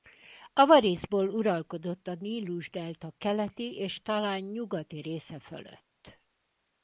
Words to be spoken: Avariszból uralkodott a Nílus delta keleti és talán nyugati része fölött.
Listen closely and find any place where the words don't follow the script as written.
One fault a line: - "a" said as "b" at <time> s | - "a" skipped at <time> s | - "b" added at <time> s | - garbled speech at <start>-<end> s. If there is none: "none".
none